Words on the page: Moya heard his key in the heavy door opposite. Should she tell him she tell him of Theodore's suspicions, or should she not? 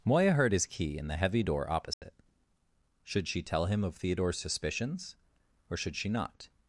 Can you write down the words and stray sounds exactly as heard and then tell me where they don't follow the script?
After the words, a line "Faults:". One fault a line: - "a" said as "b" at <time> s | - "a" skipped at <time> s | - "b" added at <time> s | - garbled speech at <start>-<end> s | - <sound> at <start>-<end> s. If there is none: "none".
Moya heard his key in the heavy door opposite. Should she tell him of Theodore's suspicions, or should she not?
Faults:
- dropout at 1.9-2.0 s
- "she tell him" skipped at 3.8 s